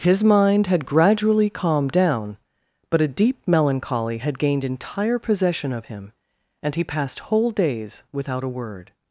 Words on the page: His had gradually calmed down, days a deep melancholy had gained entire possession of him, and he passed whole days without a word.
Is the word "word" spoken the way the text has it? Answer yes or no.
yes